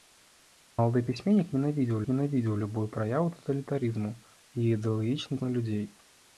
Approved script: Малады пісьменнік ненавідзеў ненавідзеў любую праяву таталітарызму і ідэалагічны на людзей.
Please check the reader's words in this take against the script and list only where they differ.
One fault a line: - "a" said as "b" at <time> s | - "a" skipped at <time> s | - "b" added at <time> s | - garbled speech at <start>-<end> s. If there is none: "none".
none